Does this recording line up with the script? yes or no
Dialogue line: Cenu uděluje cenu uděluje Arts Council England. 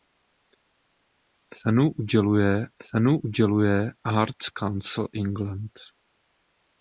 yes